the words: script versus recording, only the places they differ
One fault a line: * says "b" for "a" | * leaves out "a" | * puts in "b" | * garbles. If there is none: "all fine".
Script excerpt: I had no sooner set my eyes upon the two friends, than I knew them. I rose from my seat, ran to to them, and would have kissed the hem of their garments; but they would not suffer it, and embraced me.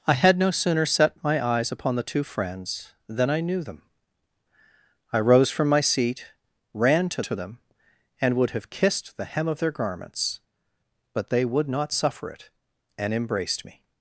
all fine